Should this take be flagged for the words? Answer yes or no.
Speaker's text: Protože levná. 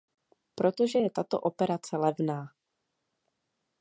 yes